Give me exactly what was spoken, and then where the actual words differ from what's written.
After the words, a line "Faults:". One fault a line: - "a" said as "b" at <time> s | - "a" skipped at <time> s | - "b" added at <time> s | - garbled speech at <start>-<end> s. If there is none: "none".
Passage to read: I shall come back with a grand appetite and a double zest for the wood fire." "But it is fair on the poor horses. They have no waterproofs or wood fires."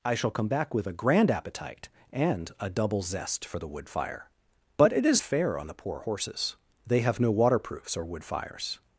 I shall come back with a grand appetite and a double zest for the wood fire." "But it is fair on the poor horses. They have no waterproofs or wood fires."
Faults:
none